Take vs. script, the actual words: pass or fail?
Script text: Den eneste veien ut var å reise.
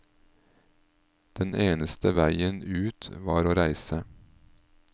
pass